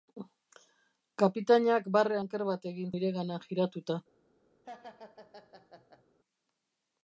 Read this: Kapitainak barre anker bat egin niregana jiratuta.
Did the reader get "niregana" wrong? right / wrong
right